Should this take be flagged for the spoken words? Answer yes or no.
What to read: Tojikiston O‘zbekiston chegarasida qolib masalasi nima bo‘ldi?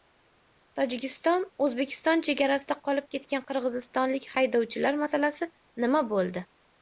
yes